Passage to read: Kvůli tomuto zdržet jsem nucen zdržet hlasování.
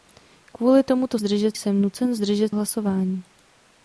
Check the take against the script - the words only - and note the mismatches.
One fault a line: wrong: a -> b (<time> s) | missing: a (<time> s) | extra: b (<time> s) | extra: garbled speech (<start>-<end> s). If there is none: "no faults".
no faults